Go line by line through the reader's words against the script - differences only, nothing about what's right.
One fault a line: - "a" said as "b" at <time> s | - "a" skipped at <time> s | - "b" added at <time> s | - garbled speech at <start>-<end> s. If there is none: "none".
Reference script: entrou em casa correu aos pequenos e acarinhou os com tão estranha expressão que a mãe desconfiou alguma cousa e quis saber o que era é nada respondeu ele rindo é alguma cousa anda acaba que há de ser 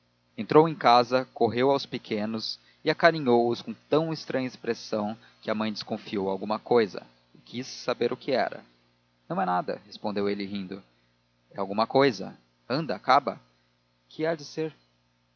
- "não" added at 9.3 s